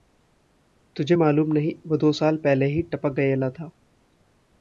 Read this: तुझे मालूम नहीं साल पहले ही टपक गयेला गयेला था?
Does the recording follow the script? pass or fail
fail